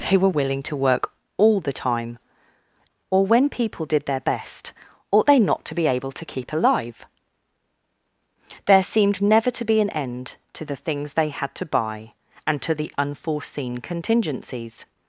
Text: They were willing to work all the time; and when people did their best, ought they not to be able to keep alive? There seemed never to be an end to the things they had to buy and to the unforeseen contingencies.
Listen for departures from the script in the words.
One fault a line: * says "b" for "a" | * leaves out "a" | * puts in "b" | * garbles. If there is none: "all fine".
* says "or" for "and"